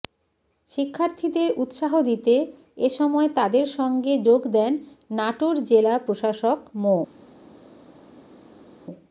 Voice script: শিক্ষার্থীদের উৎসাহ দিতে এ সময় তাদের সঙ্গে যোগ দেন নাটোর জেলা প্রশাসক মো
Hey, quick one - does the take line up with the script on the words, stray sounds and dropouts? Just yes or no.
yes